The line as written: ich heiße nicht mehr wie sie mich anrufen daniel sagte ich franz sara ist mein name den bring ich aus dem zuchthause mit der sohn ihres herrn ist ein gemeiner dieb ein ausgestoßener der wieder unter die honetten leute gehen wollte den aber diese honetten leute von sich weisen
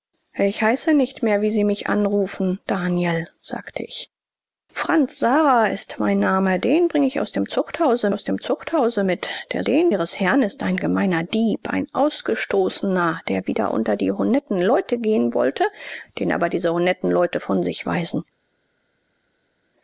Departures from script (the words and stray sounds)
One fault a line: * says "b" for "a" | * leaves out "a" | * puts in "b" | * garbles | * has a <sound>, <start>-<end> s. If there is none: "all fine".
* puts in "aus dem zuchthause"
* says "den" for "sohn"